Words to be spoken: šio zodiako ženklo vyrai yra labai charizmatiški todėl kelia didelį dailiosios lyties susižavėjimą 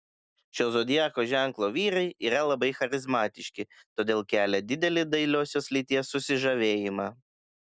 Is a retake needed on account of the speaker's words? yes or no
no